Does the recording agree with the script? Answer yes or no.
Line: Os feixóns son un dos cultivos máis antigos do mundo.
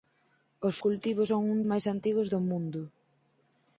no